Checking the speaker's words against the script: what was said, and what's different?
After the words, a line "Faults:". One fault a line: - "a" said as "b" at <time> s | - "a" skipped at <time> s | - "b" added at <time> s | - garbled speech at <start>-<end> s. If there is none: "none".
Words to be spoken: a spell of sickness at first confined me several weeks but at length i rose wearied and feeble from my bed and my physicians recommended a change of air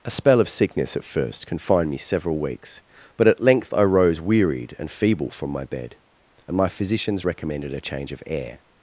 a spell of sickness at first confined me several weeks but at length i rose wearied and feeble from my bed and my physicians recommended a change of air
Faults:
none